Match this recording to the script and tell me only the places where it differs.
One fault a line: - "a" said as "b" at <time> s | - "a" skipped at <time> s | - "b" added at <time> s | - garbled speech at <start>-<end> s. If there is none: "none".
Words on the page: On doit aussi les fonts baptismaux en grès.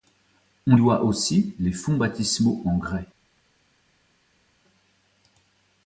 none